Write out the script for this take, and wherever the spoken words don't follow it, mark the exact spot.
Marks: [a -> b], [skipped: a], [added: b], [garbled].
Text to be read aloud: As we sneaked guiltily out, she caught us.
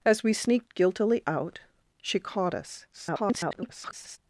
As we sneaked guiltily out, she caught us. [garbled]